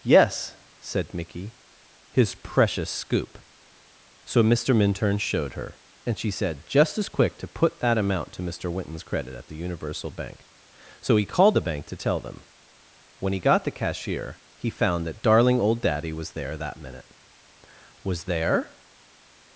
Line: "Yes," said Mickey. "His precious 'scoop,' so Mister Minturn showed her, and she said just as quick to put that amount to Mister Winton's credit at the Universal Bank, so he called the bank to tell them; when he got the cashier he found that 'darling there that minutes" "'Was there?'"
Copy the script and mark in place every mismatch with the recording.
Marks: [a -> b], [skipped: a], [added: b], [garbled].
"Yes," said Mickey. "His precious 'scoop,' so Mister Minturn showed her, and she said just as quick to put that amount to Mister Winton's credit at the Universal Bank, so he called the bank to tell them; when he got the cashier he found that 'darling [added: old Daddy was] there that [minutes" -> minute] "'Was there?'"